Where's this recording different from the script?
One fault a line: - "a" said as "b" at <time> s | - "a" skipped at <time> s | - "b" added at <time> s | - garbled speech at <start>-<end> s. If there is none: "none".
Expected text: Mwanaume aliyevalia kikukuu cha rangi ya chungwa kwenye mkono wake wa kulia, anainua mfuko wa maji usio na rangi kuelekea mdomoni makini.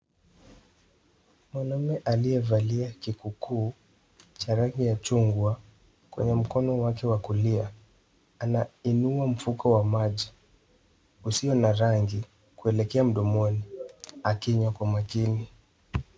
- "akinywa kwa" added at 14.2 s